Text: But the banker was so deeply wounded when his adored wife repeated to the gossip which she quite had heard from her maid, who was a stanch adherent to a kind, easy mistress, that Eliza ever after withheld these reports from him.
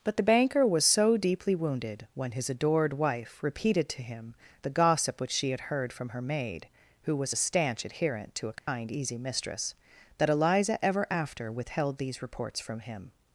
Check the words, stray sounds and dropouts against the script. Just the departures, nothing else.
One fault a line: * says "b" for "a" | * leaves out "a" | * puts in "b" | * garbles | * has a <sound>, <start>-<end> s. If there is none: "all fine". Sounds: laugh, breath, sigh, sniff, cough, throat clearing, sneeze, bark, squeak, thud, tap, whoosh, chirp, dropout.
* puts in "him"
* leaves out "quite"
* has a dropout, 8.6-8.7 s